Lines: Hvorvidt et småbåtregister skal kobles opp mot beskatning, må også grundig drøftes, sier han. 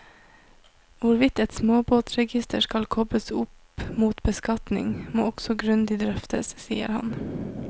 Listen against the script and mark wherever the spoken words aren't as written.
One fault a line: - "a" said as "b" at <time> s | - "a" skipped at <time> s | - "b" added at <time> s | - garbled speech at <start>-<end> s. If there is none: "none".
none